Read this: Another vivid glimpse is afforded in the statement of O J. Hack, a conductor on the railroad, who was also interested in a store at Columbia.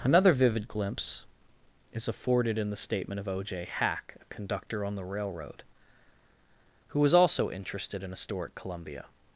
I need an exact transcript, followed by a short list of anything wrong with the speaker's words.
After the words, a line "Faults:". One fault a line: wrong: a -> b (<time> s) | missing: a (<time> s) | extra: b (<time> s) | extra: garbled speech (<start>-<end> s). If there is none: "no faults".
Another vivid glimpse is afforded in the statement of O J. Hack, a conductor on the railroad, who was also interested in a store at Columbia.
Faults:
no faults